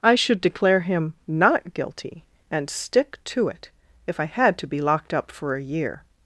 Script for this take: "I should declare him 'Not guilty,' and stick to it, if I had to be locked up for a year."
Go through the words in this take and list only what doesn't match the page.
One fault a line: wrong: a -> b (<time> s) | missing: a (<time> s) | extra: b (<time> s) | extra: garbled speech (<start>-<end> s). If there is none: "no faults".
no faults